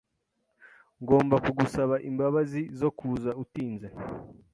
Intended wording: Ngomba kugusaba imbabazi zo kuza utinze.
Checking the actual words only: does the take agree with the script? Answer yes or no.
yes